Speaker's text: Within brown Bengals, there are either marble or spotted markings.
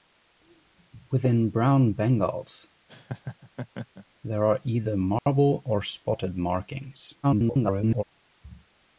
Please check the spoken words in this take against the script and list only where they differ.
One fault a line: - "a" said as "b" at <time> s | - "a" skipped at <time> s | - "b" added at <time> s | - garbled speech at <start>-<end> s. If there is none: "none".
- garbled speech at 7.2-8.0 s